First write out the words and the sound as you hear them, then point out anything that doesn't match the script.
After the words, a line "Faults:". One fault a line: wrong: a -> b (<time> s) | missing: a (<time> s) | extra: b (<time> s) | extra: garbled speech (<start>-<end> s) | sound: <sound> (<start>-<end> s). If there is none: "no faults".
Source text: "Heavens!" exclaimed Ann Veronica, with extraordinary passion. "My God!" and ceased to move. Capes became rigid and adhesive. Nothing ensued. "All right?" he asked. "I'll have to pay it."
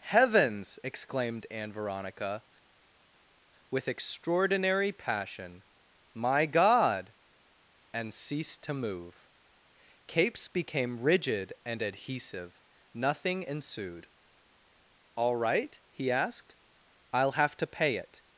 "Heavens!" exclaimed Ann Veronica, with extraordinary passion. "My God!" and ceased to move. Capes became rigid and adhesive. Nothing ensued. "All right?" he asked. "I'll have to pay it."
Faults:
no faults